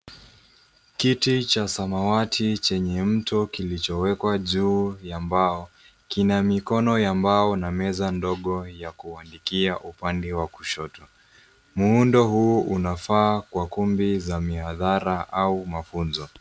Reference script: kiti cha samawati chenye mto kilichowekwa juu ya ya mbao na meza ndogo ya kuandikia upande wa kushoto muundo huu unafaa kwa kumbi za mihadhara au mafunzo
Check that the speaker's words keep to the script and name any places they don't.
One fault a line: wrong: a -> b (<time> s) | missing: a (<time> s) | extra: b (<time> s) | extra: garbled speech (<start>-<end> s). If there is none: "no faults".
extra: mbao kina mikono (5.2 s)